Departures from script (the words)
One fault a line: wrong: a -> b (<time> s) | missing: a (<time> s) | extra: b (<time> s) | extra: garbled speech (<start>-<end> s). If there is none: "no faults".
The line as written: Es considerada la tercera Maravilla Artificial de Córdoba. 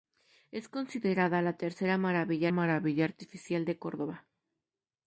extra: Maravilla (2.5 s)